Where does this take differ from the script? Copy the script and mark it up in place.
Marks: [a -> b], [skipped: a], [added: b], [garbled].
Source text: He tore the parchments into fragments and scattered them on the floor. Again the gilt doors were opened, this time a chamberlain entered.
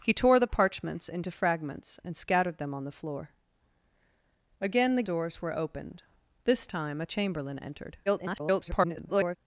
He tore the parchments into fragments and scattered them on the floor. Again the [skipped: gilt] doors were opened, this time a chamberlain entered. [garbled]